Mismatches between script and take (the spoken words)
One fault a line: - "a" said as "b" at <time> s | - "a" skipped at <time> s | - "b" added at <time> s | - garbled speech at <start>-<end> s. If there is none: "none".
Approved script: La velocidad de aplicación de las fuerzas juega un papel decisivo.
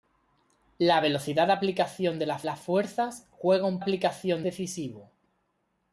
- "las" added at 2.4 s
- "papel" said as "aplicación" at 3.8 s